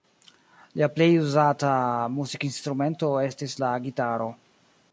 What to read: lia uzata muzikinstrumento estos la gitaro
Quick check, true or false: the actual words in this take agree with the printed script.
false